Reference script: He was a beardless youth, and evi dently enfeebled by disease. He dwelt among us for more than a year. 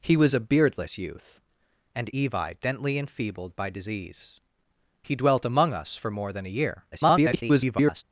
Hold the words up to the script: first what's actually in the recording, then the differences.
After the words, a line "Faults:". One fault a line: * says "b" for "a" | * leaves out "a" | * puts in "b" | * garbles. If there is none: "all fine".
He was a beardless youth, and evi dently enfeebled by disease. He dwelt among us for more than a year. [garbled]
Faults:
* garbles